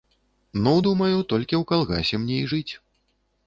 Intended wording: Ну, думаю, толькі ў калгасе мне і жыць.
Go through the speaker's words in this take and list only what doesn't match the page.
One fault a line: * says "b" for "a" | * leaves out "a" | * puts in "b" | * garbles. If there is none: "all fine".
all fine